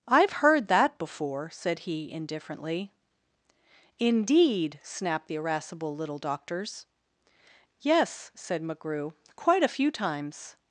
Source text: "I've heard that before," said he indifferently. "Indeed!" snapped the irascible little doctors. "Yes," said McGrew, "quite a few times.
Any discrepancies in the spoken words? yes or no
no